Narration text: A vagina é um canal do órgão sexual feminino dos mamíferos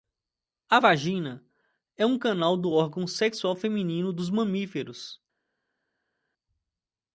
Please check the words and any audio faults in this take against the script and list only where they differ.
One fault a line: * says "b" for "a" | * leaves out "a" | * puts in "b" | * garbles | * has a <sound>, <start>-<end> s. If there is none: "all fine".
all fine